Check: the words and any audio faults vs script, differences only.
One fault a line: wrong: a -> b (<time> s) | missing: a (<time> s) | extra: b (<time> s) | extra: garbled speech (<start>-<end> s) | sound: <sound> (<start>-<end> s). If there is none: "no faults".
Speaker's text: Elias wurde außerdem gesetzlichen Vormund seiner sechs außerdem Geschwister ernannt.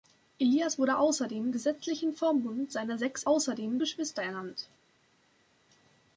no faults